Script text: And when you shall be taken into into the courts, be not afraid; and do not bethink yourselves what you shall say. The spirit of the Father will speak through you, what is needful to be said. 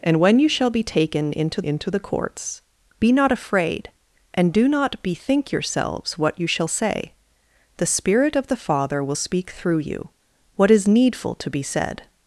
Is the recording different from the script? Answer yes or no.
no